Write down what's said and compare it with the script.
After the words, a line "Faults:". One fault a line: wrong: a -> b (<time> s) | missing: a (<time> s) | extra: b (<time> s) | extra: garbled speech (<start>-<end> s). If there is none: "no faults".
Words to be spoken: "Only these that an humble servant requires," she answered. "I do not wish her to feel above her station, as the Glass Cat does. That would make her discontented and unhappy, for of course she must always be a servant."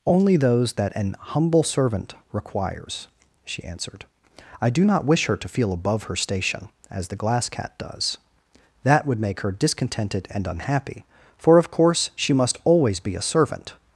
"Only those that an humble servant requires," she answered. "I do not wish her to feel above her station, as the Glass Cat does. That would make her discontented and unhappy, for of course she must always be a servant."
Faults:
wrong: these -> those (0.4 s)